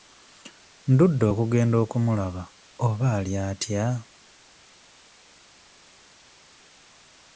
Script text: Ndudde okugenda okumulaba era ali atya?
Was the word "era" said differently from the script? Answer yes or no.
yes